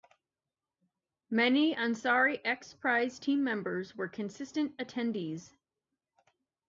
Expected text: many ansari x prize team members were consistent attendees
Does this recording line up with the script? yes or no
yes